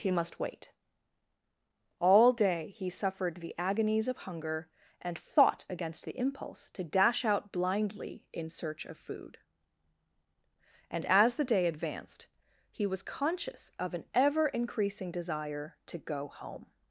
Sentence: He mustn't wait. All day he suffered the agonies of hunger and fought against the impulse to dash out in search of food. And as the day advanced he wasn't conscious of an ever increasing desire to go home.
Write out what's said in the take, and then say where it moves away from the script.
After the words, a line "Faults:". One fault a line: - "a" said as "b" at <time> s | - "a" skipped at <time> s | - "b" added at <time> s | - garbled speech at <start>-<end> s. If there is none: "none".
He must wait. All day he suffered the agonies of hunger and fought against the impulse to dash out blindly in search of food. And as the day advanced he was conscious of an ever increasing desire to go home.
Faults:
- "mustn't" said as "must" at 0.1 s
- "blindly" added at 7.5 s
- "wasn't" said as "was" at 12.9 s